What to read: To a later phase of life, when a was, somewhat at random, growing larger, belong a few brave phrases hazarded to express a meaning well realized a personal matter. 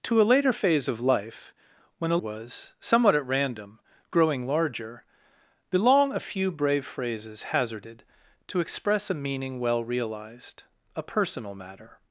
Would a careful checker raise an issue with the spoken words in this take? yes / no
no